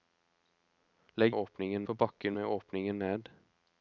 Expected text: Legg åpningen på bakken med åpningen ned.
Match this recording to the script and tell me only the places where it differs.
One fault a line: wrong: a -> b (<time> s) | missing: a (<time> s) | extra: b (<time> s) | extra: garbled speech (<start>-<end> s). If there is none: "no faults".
no faults